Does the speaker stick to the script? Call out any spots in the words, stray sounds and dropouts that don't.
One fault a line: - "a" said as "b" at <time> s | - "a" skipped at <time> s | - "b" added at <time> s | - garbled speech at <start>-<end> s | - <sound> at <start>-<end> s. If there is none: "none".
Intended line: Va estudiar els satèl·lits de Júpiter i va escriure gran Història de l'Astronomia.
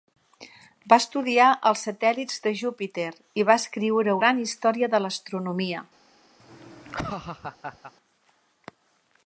- laugh at 6.4-7.9 s